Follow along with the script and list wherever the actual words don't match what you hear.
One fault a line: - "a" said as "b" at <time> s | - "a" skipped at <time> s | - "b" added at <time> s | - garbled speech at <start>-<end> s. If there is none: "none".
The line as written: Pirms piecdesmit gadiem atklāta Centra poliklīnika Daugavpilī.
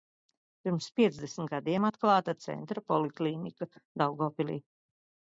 none